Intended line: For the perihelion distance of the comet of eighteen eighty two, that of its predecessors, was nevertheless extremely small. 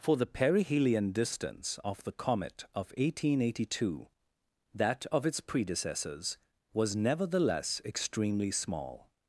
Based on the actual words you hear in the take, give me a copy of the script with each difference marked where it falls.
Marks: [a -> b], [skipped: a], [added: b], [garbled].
For the perihelion distance of the comet of eighteen eighty two, that of its predecessors, was nevertheless extremely small.